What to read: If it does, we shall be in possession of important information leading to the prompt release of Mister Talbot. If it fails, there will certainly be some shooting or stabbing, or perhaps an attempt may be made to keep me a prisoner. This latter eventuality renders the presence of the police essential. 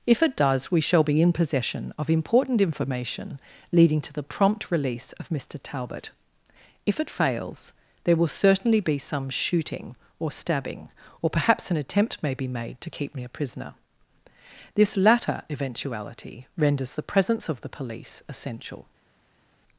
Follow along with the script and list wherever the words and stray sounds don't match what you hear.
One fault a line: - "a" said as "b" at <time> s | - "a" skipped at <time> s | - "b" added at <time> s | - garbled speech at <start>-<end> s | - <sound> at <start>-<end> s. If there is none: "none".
none